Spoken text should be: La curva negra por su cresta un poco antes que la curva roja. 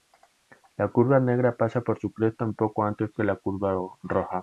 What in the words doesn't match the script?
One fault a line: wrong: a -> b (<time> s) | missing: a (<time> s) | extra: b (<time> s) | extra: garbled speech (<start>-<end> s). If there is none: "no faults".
extra: pasa (1.6 s)